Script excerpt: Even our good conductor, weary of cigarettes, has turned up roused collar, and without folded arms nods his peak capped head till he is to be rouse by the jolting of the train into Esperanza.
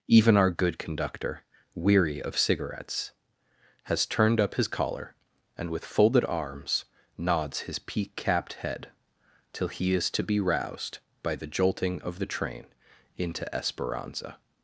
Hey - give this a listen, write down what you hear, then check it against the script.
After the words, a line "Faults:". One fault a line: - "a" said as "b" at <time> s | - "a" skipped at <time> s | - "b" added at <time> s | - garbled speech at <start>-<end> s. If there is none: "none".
Even our good conductor, weary of cigarettes, has turned up his collar, and with folded arms nods his peak capped head till he is to be roused by the jolting of the train into Esperanza.
Faults:
- "roused" said as "his" at 4.5 s
- "without" said as "with" at 5.7 s
- "rouse" said as "roused" at 10.4 s